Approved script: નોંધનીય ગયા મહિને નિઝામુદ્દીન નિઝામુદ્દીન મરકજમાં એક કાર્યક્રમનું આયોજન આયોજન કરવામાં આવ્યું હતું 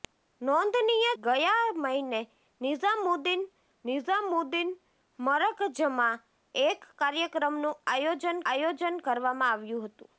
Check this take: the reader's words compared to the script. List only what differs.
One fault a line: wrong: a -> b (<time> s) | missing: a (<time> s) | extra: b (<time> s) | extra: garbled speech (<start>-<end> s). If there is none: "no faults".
no faults